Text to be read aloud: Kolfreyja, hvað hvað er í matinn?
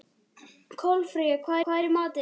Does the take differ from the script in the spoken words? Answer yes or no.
no